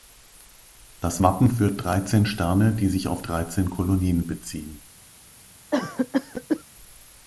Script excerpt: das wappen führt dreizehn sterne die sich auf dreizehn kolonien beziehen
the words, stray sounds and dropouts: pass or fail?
fail